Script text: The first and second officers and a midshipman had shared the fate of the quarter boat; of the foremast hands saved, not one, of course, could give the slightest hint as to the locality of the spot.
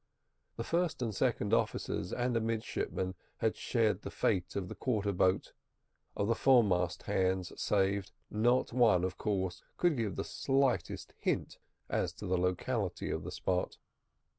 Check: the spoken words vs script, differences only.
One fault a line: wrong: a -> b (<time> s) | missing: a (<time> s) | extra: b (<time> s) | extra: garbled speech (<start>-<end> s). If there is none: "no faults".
no faults